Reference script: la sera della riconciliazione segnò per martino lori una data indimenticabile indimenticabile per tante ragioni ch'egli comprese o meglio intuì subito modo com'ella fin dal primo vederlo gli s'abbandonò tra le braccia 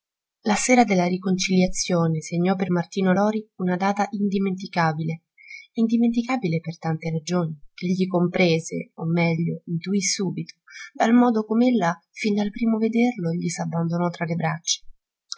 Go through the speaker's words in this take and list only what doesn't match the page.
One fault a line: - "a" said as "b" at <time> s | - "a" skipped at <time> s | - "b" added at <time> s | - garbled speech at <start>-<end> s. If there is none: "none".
- "dal" added at 10.9 s